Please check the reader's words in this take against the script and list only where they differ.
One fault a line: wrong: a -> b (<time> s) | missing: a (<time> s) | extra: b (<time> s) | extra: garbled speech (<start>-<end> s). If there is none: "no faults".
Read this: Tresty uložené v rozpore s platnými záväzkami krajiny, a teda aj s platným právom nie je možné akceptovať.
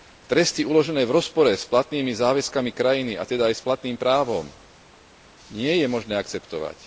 no faults